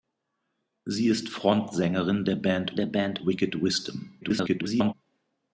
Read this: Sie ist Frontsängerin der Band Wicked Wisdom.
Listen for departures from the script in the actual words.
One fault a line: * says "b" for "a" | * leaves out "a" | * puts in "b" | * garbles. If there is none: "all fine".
* puts in "der Band"
* garbles